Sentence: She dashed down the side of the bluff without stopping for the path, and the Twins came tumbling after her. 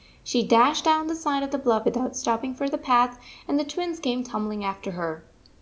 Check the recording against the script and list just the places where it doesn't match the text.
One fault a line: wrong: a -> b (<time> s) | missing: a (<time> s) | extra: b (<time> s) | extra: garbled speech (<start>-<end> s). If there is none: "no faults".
no faults